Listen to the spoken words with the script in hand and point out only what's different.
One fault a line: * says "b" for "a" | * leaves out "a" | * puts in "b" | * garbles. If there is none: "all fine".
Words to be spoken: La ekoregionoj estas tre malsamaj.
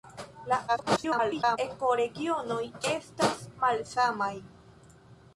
* garbles
* leaves out "tre"